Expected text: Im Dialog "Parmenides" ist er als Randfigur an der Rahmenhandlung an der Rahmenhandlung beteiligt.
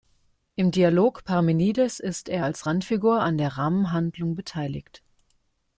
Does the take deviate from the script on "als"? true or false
false